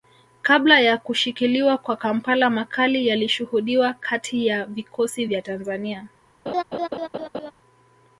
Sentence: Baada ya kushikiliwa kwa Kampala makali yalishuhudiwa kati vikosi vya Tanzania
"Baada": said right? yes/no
no